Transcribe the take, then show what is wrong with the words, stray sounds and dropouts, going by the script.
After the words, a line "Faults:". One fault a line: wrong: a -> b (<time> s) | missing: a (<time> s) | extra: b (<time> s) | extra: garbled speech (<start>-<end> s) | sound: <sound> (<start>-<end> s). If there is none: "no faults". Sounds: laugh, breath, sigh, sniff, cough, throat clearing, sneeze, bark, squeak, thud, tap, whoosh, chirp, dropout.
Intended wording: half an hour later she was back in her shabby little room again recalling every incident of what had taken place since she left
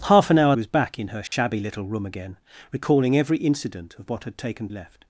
half an hour was back in her shabby little room again recalling every incident of what had taken left
Faults:
missing: later she (0.6 s)
sound: dropout (1.3-1.3 s)
missing: place since she (4.7 s)